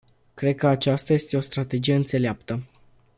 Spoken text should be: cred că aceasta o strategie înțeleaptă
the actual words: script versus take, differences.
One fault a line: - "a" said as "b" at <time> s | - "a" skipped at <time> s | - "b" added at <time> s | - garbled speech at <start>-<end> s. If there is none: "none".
- "este" added at 1.1 s